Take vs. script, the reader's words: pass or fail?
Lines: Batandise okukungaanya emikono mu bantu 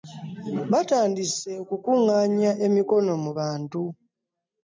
pass